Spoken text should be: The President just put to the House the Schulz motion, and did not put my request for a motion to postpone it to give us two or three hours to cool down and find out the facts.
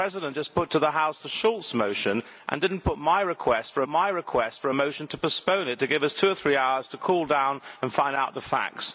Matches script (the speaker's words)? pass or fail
fail